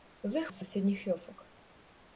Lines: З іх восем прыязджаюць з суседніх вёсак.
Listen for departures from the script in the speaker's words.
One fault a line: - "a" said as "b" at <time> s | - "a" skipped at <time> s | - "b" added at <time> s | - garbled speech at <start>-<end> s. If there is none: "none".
- "восем прыязджаюць" skipped at 0.5 s